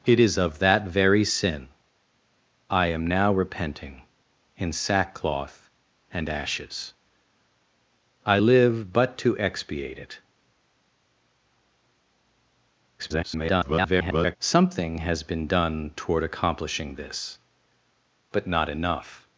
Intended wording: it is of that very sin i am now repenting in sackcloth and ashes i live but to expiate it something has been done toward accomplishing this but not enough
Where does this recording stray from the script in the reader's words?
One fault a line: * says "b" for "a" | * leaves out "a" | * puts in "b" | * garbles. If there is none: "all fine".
* garbles